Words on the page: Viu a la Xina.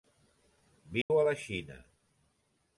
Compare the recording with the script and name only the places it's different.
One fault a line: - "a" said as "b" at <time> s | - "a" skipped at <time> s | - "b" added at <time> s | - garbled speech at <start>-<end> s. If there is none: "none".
none